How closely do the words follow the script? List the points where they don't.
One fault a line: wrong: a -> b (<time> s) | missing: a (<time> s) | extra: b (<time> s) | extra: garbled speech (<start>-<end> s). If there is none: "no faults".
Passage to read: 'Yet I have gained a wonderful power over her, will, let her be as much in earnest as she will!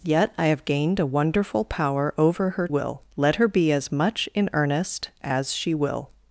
no faults